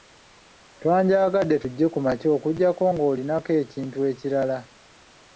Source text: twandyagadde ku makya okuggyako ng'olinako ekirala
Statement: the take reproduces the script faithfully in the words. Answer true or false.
false